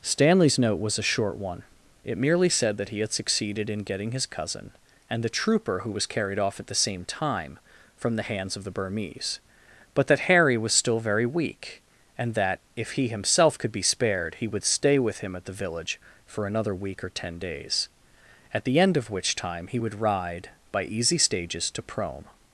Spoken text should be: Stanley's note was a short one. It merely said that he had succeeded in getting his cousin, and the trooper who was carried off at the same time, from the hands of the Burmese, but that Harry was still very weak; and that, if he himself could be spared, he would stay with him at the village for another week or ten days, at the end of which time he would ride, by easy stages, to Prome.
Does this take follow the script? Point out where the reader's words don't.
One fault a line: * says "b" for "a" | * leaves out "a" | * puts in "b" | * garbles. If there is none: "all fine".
all fine